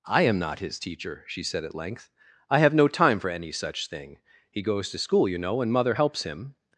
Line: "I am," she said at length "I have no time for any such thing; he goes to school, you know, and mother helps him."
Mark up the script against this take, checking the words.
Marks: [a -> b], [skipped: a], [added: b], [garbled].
"I am," [added: not his teacher] she said at length "I have no time for any such thing; he goes to school, you know, and mother helps him."